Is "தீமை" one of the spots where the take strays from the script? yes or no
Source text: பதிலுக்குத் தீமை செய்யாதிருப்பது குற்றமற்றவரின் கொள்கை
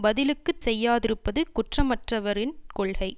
yes